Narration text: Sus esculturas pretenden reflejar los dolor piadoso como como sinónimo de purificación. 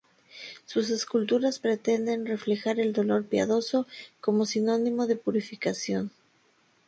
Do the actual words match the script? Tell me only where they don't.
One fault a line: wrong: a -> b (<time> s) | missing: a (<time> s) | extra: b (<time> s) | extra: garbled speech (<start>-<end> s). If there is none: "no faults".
wrong: los -> el (2.8 s)
missing: como (4.4 s)